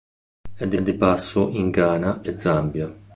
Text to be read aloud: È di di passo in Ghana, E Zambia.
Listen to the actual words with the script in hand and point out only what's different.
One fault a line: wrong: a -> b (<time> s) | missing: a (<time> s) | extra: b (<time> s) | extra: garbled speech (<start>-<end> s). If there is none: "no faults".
no faults